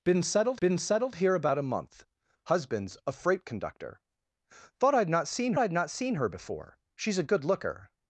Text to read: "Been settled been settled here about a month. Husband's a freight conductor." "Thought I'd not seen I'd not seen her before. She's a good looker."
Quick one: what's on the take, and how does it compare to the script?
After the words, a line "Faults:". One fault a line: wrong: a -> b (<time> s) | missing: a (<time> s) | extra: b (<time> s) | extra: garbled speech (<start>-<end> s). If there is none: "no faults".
"Been settled been settled here about a month. Husband's a freight conductor." "Thought I'd not seen I'd not seen her before. She's a good looker."
Faults:
no faults